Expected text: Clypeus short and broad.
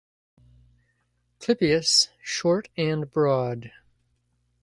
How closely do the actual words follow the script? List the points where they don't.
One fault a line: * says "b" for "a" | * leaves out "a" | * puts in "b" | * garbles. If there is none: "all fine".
all fine